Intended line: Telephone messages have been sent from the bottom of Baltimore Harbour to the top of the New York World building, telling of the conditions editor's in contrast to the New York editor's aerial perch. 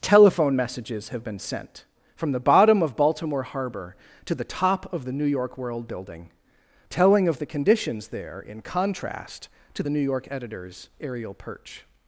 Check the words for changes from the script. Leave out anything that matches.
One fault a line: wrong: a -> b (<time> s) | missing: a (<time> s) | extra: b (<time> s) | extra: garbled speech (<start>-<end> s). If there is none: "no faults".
wrong: editor's -> there (8.1 s)